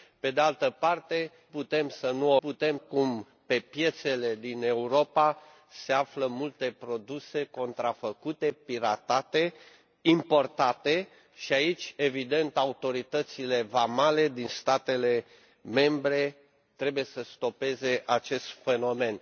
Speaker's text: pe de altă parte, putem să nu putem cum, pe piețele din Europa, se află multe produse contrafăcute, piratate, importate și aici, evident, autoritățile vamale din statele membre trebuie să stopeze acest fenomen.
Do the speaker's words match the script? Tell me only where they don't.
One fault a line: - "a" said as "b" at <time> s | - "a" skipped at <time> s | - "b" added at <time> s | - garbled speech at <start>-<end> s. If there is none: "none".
none